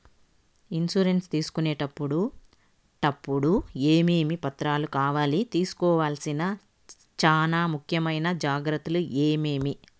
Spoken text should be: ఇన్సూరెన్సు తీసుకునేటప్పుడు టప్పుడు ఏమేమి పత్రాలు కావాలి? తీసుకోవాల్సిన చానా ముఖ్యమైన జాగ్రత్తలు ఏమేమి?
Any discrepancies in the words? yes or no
no